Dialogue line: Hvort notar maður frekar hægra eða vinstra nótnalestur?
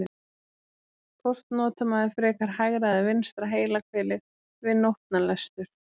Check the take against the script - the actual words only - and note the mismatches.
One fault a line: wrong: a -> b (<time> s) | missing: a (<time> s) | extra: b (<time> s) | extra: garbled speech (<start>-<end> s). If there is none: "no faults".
extra: heilahvelið við (3.6 s)